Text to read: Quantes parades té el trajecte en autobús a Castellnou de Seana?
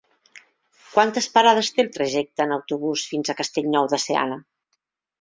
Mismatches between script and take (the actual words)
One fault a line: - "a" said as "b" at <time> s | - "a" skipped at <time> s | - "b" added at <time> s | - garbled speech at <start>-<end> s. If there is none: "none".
- "fins" added at 3.1 s